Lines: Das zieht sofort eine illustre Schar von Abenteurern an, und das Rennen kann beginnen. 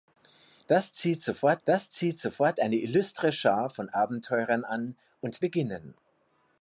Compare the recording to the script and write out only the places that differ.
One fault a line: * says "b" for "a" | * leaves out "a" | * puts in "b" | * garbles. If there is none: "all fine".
* puts in "das zieht sofort"
* leaves out "das Rennen kann"